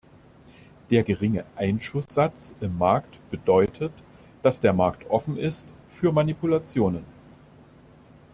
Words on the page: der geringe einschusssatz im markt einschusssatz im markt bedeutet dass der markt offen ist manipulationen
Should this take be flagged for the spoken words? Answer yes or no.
yes